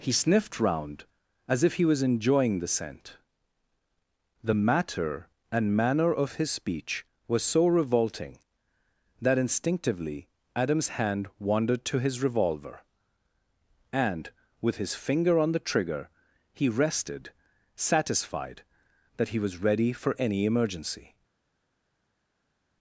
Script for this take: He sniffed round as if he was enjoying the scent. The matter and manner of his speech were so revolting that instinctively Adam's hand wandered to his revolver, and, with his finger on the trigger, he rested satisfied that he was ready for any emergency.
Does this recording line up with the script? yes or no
no